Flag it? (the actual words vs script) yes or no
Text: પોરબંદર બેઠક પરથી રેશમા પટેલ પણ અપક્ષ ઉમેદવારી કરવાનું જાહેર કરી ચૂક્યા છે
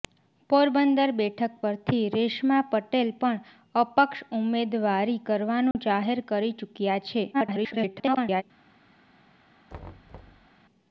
yes